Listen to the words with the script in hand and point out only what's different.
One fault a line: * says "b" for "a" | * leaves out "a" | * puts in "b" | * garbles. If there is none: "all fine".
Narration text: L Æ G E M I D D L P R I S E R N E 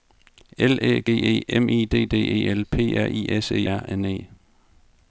* puts in "E"